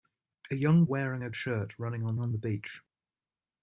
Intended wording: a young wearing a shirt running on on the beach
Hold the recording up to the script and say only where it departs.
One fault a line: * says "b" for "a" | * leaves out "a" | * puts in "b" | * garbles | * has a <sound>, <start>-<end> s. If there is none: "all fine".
all fine